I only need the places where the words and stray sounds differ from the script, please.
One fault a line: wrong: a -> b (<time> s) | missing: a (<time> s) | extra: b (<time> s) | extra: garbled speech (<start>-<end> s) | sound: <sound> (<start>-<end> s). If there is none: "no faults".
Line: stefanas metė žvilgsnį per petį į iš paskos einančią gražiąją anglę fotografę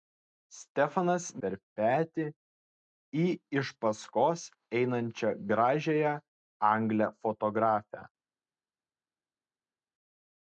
missing: metė žvilgsnį (1.2 s)